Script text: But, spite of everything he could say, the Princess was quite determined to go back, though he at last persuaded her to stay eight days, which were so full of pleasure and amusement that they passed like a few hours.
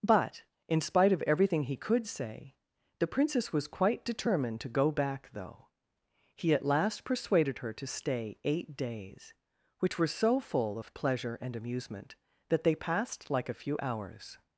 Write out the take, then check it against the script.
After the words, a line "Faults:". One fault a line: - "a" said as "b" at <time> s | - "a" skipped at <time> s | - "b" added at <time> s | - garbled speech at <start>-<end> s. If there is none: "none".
But, in spite of everything he could say, the Princess was quite determined to go back, though he at last persuaded her to stay eight days, which were so full of pleasure and amusement that they passed like a few hours.
Faults:
- "in" added at 0.7 s